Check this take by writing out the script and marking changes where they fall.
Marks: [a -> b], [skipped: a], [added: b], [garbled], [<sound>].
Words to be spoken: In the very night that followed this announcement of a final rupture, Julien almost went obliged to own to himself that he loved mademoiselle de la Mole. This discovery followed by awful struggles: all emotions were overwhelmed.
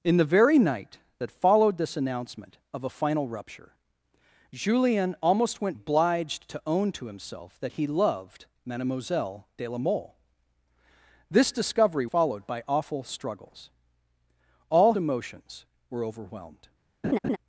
In the very night that followed this announcement of a final rupture, Julien almost went obliged to own to himself that he loved mademoiselle de la Mole. This discovery followed by awful struggles: all emotions were overwhelmed. [laugh]